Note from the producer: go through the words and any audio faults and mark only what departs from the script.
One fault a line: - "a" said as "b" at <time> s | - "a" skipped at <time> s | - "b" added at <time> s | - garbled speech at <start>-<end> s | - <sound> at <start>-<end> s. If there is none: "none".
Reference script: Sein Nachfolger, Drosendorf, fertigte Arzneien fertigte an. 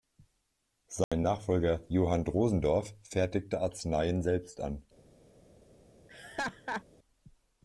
- dropout at 1.0-1.1 s
- "Johann" added at 1.9 s
- "fertigte" said as "selbst" at 4.2 s
- laugh at 6.1-6.8 s